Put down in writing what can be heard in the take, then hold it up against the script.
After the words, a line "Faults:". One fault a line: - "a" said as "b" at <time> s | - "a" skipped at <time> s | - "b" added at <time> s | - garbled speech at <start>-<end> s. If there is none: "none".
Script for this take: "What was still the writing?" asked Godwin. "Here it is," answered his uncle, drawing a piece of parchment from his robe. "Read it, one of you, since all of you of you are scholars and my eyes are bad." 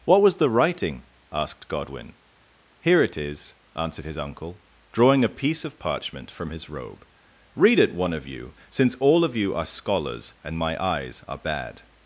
"What was the writing?" asked Godwin. "Here it is," answered his uncle, drawing a piece of parchment from his robe. "Read it, one of you, since all of you are scholars and my eyes are bad."
Faults:
- "still" skipped at 0.3 s
- "of you" skipped at 9.5 s